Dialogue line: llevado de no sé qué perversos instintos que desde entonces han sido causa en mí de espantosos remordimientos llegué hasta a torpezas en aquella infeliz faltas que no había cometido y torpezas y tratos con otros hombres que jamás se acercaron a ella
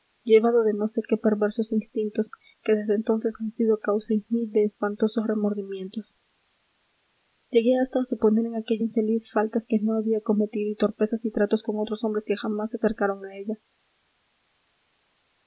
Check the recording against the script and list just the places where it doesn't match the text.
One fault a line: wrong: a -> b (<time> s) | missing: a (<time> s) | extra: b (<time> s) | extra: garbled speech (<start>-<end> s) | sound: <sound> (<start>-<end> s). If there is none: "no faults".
wrong: torpezas -> suponer (8.1 s)